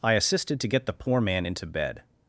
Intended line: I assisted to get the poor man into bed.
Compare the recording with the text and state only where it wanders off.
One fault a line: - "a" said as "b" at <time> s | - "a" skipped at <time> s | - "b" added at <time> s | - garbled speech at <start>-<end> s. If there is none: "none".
none